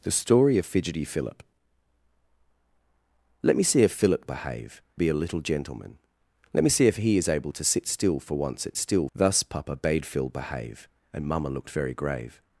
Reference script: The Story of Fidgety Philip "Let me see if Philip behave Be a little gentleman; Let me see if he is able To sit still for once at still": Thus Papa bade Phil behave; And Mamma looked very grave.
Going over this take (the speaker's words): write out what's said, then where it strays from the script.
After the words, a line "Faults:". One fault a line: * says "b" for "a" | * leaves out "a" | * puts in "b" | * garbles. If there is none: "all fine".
The Story of Fidgety Philip "Let me see if Philip behave Be a little gentleman; Let me see if he is able To sit still for once at still": Thus Papa bade Phil behave; And Mamma looked very grave.
Faults:
all fine